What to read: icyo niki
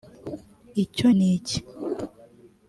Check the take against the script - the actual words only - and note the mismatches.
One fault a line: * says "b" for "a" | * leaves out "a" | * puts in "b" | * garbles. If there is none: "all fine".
all fine